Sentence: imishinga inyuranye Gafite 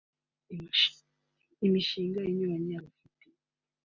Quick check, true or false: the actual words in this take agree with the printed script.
true